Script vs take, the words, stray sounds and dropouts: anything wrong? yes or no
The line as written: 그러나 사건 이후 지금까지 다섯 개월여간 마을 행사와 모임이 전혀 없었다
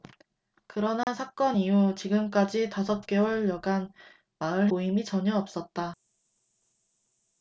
yes